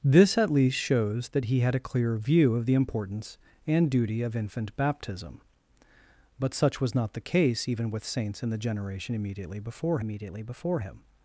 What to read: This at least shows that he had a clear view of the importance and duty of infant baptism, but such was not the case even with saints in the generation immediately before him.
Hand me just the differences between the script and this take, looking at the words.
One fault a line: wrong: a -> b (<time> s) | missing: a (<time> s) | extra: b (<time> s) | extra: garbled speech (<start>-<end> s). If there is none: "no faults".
extra: immediately before (10.0 s)